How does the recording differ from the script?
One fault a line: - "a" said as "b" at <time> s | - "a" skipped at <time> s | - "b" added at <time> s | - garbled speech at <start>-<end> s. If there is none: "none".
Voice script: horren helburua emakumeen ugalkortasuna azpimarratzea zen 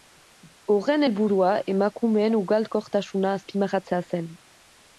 none